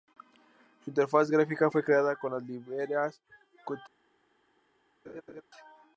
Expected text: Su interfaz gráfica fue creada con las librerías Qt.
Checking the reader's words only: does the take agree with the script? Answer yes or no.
yes